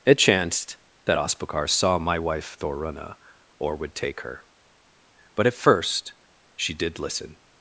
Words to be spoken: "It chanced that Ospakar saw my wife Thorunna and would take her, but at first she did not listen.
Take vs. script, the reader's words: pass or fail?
fail